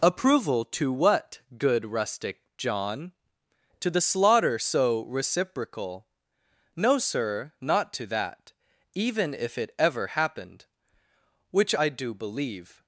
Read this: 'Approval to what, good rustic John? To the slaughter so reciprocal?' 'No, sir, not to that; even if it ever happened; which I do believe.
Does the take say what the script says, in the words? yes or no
yes